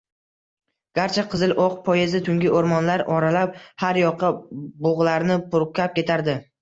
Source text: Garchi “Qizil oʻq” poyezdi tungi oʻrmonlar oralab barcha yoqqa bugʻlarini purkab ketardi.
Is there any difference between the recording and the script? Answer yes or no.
yes